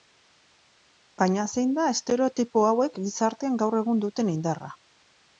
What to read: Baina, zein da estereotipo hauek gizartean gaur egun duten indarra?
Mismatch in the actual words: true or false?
false